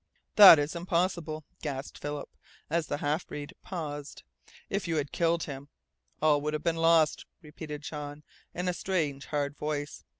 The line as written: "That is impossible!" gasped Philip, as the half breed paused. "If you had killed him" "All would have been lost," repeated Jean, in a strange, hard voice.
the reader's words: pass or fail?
pass